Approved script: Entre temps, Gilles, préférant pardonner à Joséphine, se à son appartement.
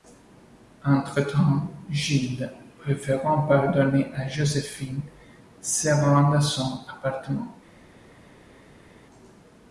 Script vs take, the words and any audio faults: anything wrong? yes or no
yes